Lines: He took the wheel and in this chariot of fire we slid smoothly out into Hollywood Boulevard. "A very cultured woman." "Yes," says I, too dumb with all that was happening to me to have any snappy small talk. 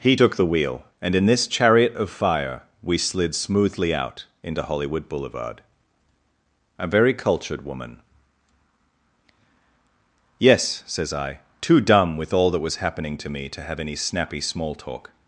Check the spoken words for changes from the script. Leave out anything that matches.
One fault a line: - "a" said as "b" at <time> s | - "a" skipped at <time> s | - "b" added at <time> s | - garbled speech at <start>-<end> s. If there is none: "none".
none